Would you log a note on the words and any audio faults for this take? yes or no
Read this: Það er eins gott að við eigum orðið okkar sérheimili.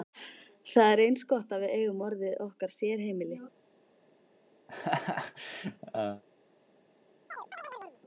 yes